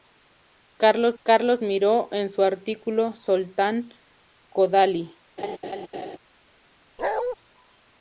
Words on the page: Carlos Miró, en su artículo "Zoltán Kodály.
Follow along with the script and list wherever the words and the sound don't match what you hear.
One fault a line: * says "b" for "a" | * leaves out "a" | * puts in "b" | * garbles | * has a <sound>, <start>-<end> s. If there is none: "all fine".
* puts in "carlos"
* has a laugh, 5.4-6.2 s
* has a bark, 7.0-7.4 s